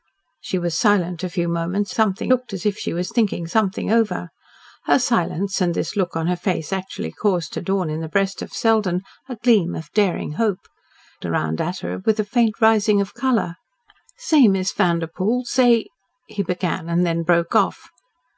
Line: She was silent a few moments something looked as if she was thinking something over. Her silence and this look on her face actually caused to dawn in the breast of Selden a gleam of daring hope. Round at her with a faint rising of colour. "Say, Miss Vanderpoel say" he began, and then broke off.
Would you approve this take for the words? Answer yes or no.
yes